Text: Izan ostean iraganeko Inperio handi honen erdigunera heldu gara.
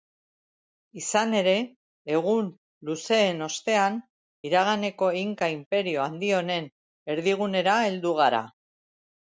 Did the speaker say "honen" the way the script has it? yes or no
yes